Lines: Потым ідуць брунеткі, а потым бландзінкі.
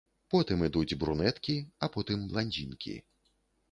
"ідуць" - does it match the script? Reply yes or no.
yes